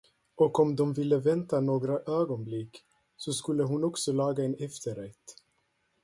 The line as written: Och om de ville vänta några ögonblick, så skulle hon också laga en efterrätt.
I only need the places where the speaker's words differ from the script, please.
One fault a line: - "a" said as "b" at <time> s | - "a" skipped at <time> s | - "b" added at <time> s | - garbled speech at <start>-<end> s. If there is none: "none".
none